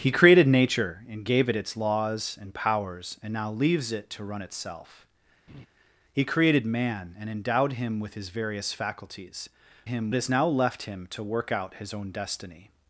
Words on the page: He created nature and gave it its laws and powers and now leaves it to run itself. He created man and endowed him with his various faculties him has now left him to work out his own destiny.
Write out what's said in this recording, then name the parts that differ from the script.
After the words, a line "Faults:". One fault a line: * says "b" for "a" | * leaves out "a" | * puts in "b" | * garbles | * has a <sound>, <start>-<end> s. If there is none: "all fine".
He created nature and gave it its laws and powers and now leaves it to run itself. He created man and endowed him with his various faculties him has now left him to work out his own destiny.
Faults:
* has a laugh, 5.5-5.7 s